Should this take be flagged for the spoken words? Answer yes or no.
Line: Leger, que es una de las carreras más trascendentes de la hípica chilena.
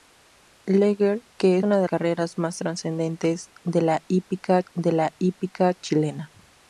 yes